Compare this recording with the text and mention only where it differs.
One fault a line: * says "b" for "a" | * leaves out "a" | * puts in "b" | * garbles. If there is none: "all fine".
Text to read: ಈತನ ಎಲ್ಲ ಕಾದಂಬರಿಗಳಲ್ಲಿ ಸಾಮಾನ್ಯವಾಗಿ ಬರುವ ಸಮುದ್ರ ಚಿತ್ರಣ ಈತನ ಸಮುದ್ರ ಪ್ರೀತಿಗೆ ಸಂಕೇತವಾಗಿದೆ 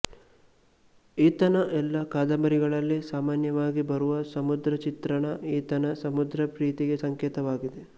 all fine